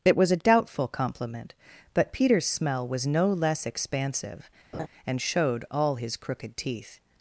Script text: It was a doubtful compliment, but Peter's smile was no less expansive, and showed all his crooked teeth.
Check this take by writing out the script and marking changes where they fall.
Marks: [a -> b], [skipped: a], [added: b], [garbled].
It was a doubtful compliment, but Peter's [smile -> smell] was no less expansive, and showed all his crooked teeth.